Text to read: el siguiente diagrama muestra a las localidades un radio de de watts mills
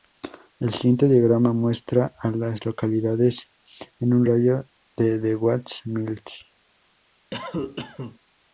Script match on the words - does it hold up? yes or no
no